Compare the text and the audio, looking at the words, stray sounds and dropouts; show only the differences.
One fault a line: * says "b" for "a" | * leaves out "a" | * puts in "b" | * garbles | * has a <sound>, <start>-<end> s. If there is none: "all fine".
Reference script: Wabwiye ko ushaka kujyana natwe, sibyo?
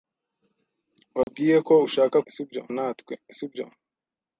* has a dropout, 1.2-1.3 s
* says "sibyo" for "kujyana"